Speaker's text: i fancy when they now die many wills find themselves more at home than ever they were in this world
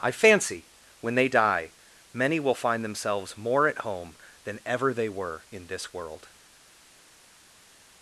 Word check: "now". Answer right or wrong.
wrong